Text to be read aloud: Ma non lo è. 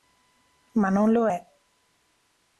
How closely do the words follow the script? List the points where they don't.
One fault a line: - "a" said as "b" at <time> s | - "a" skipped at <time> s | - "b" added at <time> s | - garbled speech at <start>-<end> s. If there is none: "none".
none